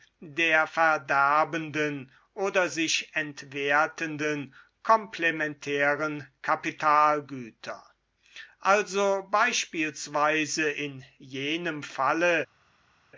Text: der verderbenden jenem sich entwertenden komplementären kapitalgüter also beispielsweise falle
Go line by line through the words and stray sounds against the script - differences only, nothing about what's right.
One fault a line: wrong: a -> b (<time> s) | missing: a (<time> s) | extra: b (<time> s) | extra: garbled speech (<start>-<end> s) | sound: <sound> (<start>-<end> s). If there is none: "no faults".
wrong: jenem -> oder (2.3 s)
extra: in jenem (10.7 s)